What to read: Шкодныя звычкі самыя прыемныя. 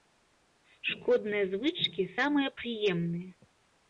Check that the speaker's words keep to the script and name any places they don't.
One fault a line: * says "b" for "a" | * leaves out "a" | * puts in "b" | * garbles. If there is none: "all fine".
all fine